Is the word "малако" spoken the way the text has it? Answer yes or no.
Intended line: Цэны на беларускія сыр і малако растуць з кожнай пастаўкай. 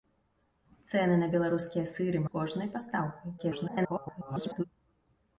no